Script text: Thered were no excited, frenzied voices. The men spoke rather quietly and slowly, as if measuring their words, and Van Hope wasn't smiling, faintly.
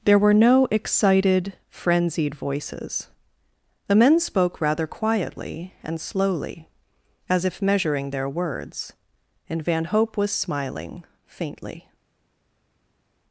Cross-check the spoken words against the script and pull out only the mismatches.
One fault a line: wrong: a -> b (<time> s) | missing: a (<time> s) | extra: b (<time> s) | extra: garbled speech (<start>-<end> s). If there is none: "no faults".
wrong: Thered -> There (0.0 s)
wrong: wasn't -> was (10.2 s)